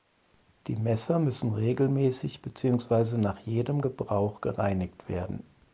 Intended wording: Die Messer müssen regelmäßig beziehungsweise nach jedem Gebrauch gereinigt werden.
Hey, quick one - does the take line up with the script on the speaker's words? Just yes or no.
yes